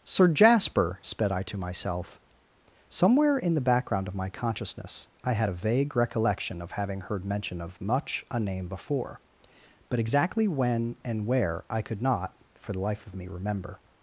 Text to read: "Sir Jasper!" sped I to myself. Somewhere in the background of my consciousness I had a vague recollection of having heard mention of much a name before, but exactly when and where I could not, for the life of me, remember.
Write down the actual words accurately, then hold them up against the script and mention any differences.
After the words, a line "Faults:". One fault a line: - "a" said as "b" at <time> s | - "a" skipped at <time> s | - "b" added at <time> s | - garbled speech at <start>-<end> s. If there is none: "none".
"Sir Jasper!" sped I to myself. Somewhere in the background of my consciousness I had a vague recollection of having heard mention of much a name before, but exactly when and where I could not, for the life of me, remember.
Faults:
none